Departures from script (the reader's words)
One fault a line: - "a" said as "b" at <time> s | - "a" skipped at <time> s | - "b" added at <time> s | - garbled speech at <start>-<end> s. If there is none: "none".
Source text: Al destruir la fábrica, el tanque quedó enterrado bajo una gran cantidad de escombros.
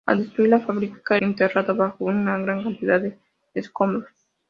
- "el tanque quedó" skipped at 1.2 s